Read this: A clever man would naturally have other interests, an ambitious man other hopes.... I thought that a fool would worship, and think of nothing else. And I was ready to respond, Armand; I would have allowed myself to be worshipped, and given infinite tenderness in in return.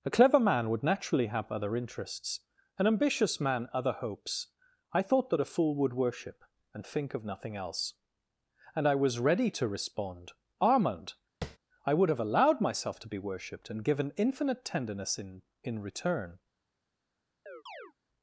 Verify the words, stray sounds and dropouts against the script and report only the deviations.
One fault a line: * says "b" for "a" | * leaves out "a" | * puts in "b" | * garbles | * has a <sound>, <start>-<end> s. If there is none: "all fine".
* has a tap, 11.4-11.6 s
* has a chirp, 17.5-17.9 s